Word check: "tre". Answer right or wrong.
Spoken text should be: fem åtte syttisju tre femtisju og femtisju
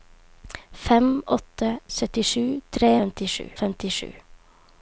right